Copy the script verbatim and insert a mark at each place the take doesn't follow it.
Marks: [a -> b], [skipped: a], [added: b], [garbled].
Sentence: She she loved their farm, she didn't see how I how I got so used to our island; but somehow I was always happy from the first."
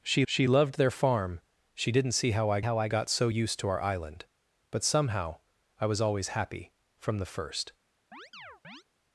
She she loved their farm, she didn't see how I how I got so used to our island; but somehow I was always happy from the first."